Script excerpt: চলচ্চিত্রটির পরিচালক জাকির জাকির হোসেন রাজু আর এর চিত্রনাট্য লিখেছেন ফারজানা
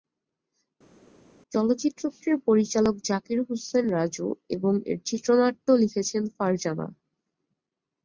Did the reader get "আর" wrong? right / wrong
wrong